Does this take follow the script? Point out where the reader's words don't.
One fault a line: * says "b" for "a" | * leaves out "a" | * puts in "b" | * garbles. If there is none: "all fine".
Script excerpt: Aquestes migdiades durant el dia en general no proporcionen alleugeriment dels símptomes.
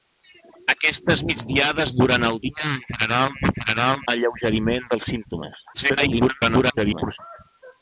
* says "general" for "proporcionen"
* garbles